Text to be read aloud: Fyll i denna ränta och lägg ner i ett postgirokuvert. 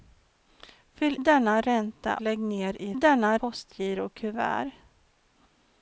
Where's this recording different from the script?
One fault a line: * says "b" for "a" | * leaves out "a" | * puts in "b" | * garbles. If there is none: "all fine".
* leaves out "i"
* leaves out "och"
* says "denna" for "ett"